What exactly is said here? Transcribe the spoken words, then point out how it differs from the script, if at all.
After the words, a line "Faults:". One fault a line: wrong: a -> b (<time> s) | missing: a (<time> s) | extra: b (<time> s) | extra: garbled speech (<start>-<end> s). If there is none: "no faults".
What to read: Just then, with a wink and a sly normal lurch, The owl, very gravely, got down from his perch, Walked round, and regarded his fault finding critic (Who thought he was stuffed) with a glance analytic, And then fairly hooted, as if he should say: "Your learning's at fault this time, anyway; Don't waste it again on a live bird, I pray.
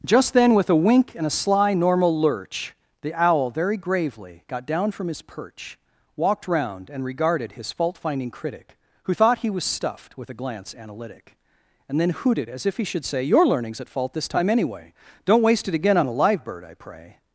Just then, with a wink and a sly normal lurch, The owl, very gravely, got down from his perch, Walked round, and regarded his fault finding critic (Who thought he was stuffed) with a glance analytic, And then hooted, as if he should say: "Your learning's at fault this time, anyway; Don't waste it again on a live bird, I pray.
Faults:
missing: fairly (12.1 s)